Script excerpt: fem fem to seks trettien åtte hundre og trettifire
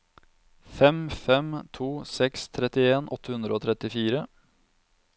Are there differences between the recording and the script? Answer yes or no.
no